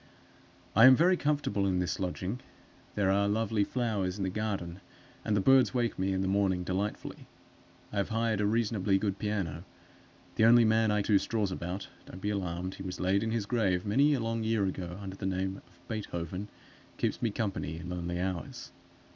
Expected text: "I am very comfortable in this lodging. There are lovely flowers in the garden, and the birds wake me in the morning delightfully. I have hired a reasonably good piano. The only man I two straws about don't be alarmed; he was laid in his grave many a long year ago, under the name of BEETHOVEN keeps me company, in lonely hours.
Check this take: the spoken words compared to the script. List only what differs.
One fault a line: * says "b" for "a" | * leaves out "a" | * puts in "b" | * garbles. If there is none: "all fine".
all fine